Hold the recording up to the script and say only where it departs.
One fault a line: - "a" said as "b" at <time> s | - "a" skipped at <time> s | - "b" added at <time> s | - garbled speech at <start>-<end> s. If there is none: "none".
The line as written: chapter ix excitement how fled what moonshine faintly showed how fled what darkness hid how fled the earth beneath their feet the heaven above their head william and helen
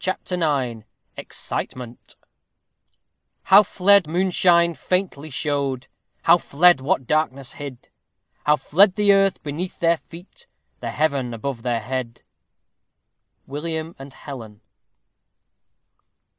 - "what" skipped at 4.1 s